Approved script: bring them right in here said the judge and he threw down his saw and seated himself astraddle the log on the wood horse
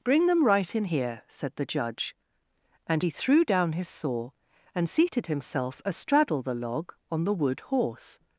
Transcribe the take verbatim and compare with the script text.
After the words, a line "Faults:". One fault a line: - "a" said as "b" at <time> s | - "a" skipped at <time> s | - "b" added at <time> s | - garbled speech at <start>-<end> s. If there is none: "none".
bring them right in here said the judge and he threw down his saw and seated himself astraddle the log on the wood horse
Faults:
none